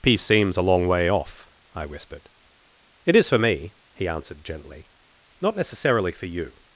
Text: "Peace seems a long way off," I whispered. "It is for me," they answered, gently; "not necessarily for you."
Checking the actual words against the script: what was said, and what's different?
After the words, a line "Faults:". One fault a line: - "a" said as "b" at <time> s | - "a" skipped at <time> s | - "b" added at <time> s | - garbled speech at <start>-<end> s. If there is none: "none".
"Peace seems a long way off," I whispered. "It is for me," he answered, gently; "not necessarily for you."
Faults:
- "they" said as "he" at 3.9 s